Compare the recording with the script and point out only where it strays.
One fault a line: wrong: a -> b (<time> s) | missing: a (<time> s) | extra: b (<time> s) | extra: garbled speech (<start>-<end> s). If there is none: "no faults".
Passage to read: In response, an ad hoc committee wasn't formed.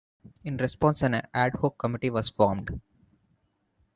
wrong: wasn't -> was (2.1 s)